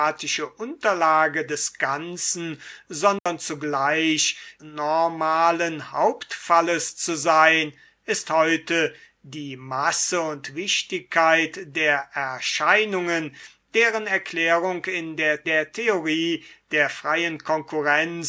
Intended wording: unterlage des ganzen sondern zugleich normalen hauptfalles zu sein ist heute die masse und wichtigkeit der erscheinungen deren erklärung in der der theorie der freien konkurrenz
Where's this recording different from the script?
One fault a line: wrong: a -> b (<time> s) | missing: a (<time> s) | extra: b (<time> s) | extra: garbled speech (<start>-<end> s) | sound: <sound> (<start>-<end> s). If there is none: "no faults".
sound: dropout (3.2-3.3 s)